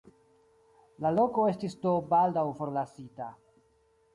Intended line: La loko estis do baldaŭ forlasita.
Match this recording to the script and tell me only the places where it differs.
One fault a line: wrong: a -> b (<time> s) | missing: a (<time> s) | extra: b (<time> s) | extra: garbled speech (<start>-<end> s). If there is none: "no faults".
no faults